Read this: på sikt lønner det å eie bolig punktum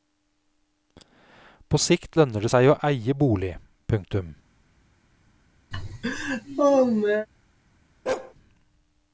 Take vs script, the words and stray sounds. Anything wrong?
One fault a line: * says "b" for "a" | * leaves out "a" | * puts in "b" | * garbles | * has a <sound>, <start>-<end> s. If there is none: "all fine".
* puts in "seg"
* has a laugh, 5.7-7.3 s
* has a bark, 8.1-8.3 s